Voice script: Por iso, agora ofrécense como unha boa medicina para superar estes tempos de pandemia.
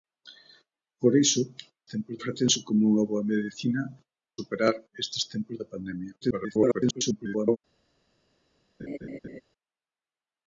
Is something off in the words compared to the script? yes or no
yes